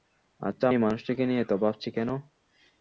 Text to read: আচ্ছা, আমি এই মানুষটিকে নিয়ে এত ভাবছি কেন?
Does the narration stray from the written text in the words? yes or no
yes